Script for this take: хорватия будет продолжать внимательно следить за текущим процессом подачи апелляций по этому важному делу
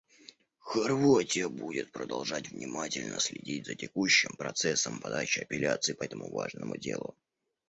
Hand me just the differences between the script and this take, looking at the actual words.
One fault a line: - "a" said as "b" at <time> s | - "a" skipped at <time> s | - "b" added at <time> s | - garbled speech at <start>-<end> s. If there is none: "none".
none